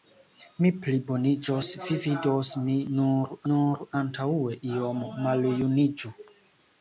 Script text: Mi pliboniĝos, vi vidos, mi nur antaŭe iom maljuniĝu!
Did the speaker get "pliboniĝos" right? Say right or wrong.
right